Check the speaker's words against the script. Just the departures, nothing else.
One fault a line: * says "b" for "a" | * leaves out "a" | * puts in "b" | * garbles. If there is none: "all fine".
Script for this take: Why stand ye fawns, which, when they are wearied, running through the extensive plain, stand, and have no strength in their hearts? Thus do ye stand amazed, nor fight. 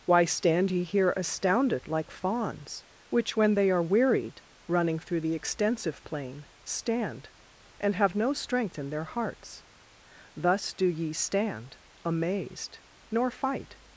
* puts in "here astounded like"